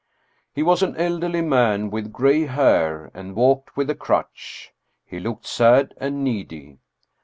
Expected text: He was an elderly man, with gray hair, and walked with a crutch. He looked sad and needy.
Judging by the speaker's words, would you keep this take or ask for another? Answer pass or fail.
pass